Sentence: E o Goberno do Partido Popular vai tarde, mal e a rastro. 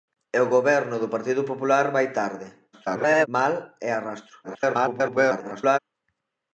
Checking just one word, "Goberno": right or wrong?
right